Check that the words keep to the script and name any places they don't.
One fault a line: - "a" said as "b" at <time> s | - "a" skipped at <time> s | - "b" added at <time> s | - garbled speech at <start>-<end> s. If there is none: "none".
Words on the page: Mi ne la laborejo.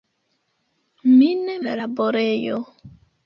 none